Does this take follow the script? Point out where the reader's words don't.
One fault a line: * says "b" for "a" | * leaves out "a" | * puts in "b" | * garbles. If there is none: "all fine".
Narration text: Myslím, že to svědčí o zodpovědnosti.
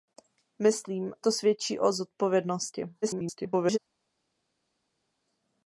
* leaves out "že"
* garbles